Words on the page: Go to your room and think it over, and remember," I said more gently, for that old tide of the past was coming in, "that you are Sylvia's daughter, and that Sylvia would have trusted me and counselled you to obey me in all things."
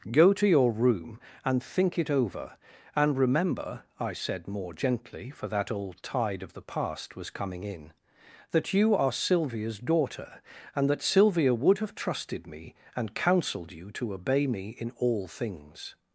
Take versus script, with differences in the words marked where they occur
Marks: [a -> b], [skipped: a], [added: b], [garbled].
Go to your room and think it over, and remember," I said more gently, for that old tide of the past was coming in, "that you are Sylvia's daughter, and that Sylvia would have trusted me and counselled you to obey me in all things."